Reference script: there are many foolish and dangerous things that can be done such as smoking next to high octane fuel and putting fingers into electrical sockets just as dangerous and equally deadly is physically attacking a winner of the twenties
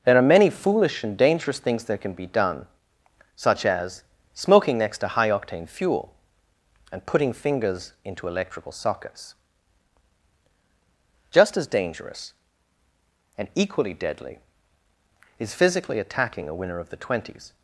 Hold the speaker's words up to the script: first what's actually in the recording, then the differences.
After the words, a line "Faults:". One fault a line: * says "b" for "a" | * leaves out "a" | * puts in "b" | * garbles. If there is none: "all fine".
there are many foolish and dangerous things that can be done such as smoking next to high octane fuel and putting fingers into electrical sockets just as dangerous and equally deadly is physically attacking a winner of the twenties
Faults:
all fine